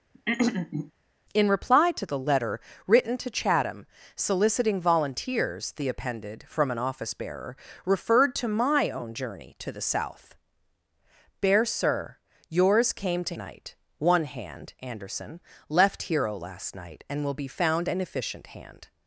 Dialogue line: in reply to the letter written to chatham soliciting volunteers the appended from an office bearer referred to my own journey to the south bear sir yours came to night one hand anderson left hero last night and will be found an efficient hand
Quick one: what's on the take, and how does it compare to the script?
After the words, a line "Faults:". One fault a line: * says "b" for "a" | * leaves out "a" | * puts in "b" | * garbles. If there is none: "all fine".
in reply to the letter written to chatham soliciting volunteers the appended from an office bearer referred to my own journey to the south bear sir yours came to night one hand anderson left hero last night and will be found an efficient hand
Faults:
all fine